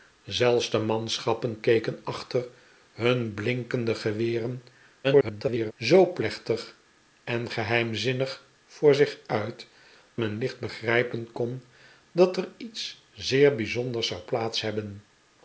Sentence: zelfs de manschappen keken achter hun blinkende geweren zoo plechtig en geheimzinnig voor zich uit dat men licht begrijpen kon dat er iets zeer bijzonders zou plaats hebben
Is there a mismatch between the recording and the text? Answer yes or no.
yes